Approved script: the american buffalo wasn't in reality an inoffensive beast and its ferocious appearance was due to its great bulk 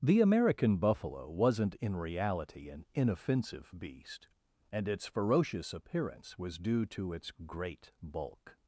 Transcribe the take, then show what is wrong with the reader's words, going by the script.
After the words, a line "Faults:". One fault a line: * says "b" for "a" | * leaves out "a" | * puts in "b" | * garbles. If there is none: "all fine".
the american buffalo wasn't in reality an inoffensive beast and its ferocious appearance was due to its great bulk
Faults:
all fine